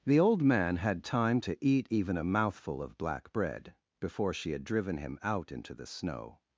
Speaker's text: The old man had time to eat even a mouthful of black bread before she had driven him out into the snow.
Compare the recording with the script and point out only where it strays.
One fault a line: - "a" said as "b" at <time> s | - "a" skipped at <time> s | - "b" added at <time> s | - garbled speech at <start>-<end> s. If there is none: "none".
none